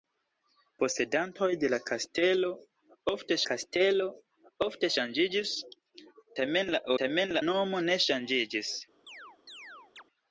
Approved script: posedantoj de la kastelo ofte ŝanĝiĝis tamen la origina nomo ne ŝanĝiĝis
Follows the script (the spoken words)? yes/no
no